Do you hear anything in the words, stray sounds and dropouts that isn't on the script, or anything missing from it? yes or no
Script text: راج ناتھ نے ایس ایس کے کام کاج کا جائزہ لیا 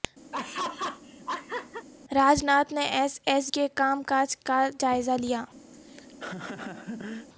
yes